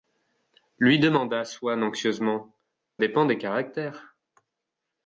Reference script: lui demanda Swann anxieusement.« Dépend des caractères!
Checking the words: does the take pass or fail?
pass